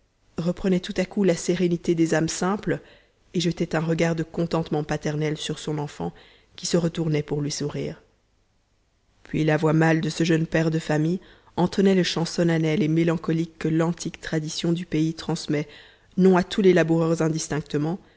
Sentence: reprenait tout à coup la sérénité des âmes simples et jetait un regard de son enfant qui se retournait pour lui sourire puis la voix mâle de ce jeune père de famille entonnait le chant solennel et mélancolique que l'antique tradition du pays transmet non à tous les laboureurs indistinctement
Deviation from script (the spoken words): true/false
true